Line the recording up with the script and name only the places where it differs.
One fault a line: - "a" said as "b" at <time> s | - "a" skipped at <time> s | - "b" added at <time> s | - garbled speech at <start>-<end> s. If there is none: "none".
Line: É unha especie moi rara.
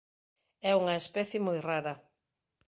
none